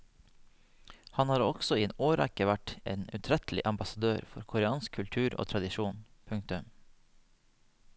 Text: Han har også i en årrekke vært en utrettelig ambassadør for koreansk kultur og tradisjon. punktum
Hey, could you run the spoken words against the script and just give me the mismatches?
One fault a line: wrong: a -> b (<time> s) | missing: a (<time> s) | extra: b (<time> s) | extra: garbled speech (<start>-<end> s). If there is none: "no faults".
no faults